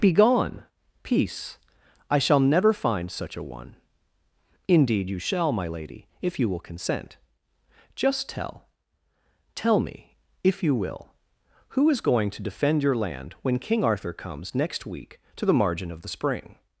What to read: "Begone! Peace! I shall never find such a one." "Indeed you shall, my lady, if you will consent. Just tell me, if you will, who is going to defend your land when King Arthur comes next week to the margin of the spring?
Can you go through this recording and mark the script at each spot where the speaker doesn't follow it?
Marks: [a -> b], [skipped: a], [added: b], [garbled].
"Begone! Peace! I shall never find such a one." "Indeed you shall, my lady, if you will consent. Just tell [added: tell] me, if you will, who is going to defend your land when King Arthur comes next week to the margin of the spring?